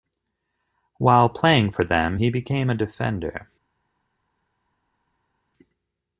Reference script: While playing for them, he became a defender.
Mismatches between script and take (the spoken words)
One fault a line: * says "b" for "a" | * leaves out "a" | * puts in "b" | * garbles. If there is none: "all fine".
all fine